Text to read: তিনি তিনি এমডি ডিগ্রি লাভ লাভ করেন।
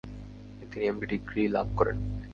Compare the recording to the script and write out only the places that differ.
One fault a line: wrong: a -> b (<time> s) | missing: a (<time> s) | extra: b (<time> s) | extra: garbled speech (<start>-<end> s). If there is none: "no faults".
missing: তিনি (0.8 s)
missing: লাভ (1.7 s)